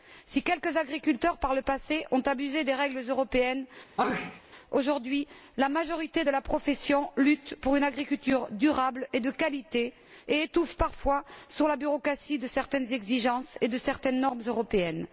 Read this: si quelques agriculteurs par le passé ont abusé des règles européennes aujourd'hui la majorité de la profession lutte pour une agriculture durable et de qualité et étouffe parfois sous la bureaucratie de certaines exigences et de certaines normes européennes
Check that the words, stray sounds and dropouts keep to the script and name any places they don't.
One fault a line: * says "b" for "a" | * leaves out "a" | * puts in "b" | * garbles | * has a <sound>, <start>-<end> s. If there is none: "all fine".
* has a sneeze, 4.0-4.4 s